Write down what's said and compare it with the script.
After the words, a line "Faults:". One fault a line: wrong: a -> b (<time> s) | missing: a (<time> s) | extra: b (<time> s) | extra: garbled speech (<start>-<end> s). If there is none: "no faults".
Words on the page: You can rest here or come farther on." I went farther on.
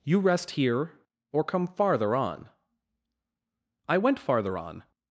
You rest here or come farther on." I went farther on.
Faults:
missing: can (0.2 s)